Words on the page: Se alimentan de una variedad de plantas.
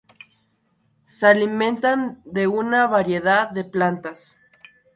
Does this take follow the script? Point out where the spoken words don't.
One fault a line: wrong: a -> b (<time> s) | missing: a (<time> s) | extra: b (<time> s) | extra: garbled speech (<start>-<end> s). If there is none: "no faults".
no faults